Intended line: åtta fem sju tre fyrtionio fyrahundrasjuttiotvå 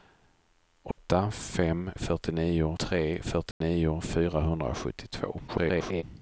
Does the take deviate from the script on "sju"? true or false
true